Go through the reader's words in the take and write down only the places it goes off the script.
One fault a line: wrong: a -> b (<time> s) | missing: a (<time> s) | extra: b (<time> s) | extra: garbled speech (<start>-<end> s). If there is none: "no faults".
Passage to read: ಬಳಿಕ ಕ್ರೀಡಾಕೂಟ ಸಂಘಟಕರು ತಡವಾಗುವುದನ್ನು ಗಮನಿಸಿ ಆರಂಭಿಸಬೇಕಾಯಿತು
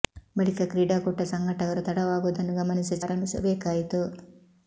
no faults